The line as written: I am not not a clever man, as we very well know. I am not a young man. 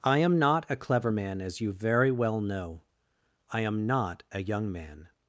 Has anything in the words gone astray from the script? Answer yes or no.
yes